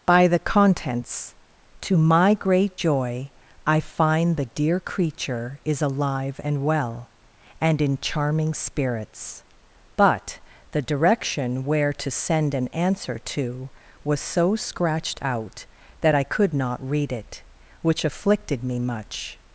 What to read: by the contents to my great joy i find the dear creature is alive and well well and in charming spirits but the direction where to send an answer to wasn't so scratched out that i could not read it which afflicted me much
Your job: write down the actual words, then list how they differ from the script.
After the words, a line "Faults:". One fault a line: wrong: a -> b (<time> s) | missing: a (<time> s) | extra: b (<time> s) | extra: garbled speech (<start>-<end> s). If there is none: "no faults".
by the contents to my great joy i find the dear creature is alive and well and in charming spirits but the direction where to send an answer to was so scratched out that i could not read it which afflicted me much
Faults:
missing: well (7.1 s)
wrong: wasn't -> was (14.0 s)